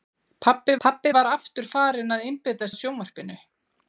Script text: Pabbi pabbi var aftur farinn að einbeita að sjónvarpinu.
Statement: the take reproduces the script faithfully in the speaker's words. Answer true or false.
true